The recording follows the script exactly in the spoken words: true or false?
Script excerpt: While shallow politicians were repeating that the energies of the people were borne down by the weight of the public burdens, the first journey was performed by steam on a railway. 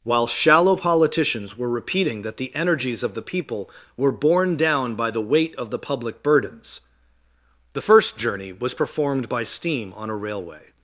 true